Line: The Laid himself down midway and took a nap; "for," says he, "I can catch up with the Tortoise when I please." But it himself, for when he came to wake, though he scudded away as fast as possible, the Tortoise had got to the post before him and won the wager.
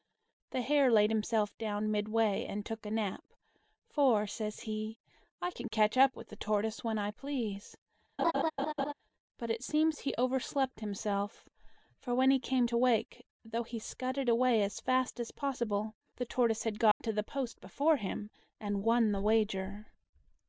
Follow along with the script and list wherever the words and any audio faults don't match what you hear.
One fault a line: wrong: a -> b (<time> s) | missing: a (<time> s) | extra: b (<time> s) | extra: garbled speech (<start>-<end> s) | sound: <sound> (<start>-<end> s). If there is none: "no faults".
extra: Hare (0.6 s)
sound: laugh (8.2-8.9 s)
extra: seems he overslept (9.6 s)
sound: dropout (16.9-17.0 s)